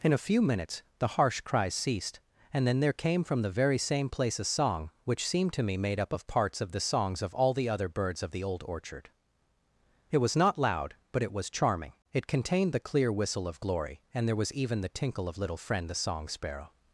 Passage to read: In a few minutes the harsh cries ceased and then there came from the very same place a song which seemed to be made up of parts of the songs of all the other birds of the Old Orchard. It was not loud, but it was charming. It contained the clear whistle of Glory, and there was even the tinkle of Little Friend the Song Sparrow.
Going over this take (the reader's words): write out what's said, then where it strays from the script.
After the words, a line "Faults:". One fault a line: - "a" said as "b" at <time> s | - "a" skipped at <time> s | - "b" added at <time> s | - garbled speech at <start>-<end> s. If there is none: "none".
In a few minutes the harsh cries ceased and then there came from the very same place a song which seemed to me made up of parts of the songs of all the other birds of the Old Orchard. It was not loud, but it was charming. It contained the clear whistle of Glory, and there was even the tinkle of Little Friend the Song Sparrow.
Faults:
- "be" said as "me" at 5.6 s